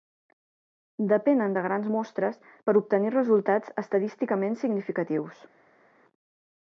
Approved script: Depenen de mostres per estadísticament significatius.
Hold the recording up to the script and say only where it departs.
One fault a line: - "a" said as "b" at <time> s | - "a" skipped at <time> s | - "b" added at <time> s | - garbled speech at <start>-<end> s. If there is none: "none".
- "grans" added at 1.7 s
- "obtenir resultats" added at 2.8 s